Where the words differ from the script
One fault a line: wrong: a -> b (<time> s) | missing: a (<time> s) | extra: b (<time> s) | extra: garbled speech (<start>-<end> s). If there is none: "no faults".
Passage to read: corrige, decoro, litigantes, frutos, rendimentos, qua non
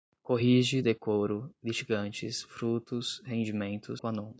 no faults